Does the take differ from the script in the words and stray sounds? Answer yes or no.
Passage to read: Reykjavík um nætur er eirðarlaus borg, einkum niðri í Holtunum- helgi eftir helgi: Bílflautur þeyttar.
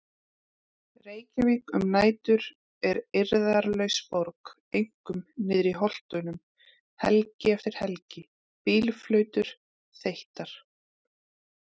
no